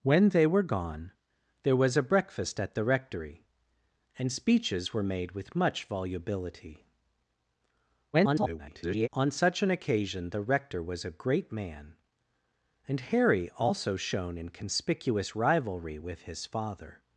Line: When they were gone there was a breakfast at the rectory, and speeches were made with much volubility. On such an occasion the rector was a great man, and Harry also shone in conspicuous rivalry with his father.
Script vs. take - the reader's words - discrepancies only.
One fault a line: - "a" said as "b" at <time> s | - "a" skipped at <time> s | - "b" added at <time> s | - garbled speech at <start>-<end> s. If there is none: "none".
- garbled speech at 8.1-9.1 s